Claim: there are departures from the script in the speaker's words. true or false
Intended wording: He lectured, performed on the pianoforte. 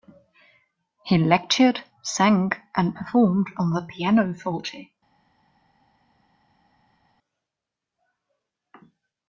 true